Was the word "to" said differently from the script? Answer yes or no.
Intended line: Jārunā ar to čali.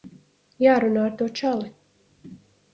no